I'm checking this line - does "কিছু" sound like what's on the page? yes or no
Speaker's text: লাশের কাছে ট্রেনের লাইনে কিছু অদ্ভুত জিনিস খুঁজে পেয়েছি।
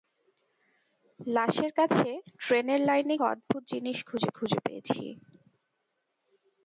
no